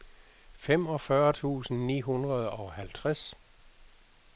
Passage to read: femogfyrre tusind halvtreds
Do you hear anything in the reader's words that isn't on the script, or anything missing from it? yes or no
yes